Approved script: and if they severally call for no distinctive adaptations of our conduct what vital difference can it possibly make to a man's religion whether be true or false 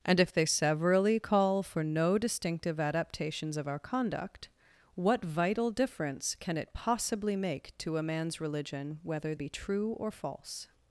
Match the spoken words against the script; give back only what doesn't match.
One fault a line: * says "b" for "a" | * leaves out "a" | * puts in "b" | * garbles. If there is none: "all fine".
all fine